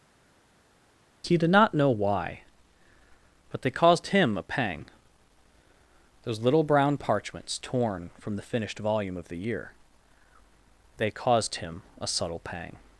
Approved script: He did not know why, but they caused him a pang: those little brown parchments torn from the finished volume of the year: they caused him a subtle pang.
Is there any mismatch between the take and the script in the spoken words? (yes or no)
no